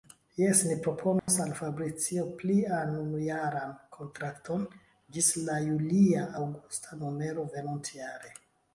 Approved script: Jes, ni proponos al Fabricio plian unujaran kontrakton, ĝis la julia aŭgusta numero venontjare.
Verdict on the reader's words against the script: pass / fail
pass